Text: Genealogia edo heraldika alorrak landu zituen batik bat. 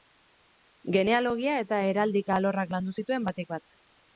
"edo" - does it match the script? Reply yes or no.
no